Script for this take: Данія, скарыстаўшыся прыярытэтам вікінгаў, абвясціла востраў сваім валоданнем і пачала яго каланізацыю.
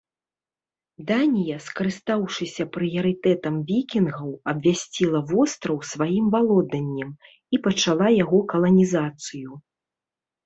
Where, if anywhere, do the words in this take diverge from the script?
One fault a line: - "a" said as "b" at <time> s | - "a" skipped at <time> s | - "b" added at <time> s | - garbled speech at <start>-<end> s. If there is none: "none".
none